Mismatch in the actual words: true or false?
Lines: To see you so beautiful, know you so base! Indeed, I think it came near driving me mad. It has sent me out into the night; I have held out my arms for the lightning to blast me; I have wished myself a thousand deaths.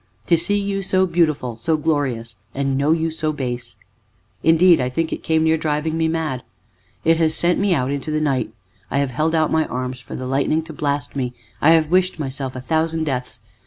true